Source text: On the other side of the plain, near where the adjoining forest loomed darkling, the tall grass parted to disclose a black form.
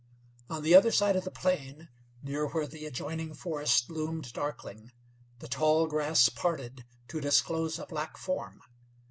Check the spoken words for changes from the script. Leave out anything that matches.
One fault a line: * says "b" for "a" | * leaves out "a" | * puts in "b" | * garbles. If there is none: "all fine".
all fine